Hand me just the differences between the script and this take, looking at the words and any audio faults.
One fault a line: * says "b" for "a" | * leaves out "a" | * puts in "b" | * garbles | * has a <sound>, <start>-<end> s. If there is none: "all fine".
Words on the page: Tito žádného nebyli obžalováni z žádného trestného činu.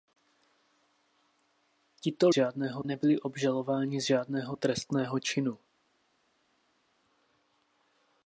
all fine